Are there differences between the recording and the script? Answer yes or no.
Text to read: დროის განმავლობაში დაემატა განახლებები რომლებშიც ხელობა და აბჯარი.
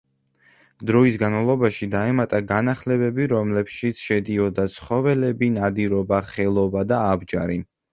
yes